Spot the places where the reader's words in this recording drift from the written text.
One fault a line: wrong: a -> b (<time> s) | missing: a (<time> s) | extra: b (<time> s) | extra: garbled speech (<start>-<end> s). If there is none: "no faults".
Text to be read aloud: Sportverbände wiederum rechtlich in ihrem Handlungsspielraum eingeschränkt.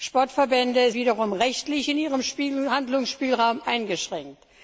no faults